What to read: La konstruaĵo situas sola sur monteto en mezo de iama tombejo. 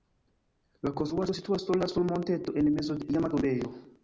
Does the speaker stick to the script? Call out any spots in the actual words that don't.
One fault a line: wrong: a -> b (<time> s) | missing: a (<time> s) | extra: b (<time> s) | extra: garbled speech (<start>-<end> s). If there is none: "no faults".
no faults